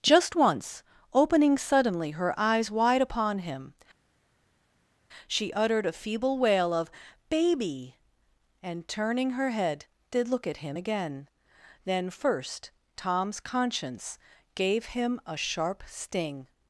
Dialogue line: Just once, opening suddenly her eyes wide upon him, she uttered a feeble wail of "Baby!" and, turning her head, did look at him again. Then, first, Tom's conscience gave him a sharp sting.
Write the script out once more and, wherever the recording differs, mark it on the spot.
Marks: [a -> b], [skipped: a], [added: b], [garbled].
Just once, opening suddenly her eyes wide upon him, she uttered a feeble wail of "Baby!" and, turning her head, did look at him again. Then, first, Tom's conscience gave him a sharp sting.